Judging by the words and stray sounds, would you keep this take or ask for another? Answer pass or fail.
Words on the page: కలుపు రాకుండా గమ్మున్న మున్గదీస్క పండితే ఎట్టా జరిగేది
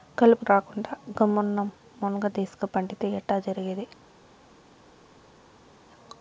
pass